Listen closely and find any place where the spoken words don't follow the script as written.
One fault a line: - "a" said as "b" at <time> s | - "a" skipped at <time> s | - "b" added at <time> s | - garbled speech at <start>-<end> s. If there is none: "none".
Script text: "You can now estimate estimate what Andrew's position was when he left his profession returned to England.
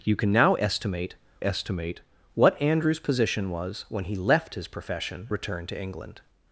none